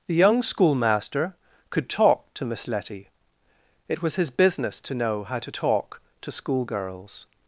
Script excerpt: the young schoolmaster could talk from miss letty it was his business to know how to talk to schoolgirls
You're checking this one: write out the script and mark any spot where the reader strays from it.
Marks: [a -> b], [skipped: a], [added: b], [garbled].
the young schoolmaster could talk [from -> to] miss letty it was his business to know how to talk to schoolgirls